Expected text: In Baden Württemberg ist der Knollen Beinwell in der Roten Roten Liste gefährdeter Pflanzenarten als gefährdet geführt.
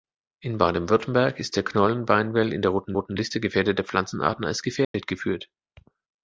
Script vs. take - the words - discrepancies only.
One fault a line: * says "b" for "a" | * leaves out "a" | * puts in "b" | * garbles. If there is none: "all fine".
all fine